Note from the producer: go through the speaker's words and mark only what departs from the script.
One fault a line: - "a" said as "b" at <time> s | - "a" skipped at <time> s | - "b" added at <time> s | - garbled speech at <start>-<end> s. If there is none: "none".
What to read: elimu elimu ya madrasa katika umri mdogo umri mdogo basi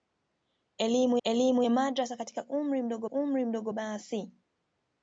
none